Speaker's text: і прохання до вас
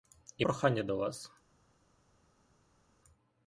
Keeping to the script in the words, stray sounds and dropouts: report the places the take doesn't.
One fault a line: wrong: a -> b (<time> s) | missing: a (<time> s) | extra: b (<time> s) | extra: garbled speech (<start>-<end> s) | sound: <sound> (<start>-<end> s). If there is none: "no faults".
no faults